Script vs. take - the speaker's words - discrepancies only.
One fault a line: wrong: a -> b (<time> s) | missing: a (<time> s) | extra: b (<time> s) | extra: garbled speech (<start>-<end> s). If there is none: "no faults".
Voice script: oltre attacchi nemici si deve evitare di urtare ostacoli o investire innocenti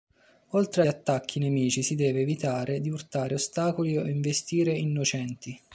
no faults